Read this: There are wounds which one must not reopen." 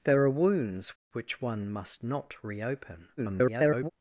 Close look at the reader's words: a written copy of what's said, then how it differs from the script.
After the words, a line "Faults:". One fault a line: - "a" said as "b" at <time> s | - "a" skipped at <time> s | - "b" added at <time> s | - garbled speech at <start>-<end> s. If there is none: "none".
There are wounds which one must not reopen." [garbled]
Faults:
- garbled speech at 3.2-3.9 s